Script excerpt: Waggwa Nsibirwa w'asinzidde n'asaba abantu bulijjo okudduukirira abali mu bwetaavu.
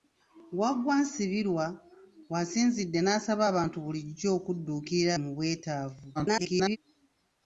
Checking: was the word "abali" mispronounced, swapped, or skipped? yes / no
yes